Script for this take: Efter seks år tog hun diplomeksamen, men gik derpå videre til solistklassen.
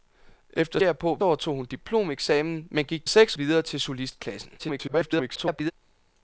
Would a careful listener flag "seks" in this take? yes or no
yes